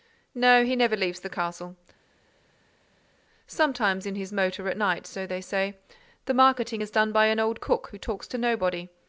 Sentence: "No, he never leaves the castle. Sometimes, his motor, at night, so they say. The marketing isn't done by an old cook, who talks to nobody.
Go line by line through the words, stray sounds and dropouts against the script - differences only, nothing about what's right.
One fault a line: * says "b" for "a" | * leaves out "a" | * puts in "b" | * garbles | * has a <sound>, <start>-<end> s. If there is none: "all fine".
* puts in "in"
* says "is" for "isn't"